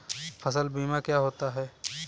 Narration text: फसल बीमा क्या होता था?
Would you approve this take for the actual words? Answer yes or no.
no